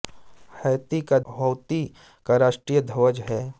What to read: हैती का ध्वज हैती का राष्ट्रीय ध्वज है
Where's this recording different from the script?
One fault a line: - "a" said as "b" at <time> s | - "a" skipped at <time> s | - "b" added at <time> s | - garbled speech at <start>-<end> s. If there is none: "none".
- "ध्वज" skipped at 1.2 s